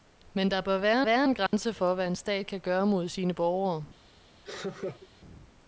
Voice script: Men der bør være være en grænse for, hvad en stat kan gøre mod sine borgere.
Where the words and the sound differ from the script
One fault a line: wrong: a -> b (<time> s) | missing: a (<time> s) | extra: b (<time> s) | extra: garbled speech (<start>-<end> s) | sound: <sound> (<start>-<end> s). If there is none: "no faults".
sound: dropout (1.5-1.5 s)
sound: laugh (4.4-5.1 s)